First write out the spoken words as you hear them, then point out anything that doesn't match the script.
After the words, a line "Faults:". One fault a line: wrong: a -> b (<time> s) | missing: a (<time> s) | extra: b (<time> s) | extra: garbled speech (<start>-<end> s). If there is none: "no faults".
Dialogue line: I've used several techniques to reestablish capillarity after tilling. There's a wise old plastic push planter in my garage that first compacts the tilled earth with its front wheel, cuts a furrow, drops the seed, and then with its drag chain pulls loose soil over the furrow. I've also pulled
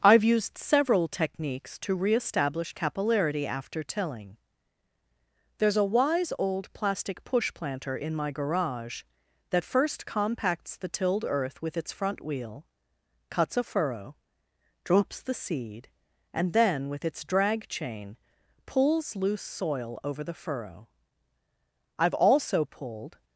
I've used several techniques to reestablish capillarity after tilling. There's a wise old plastic push planter in my garage that first compacts the tilled earth with its front wheel, cuts a furrow, drops the seed, and then with its drag chain pulls loose soil over the furrow. I've also pulled
Faults:
no faults